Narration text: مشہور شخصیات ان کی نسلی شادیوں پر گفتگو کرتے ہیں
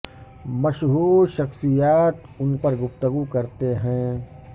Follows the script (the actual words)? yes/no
no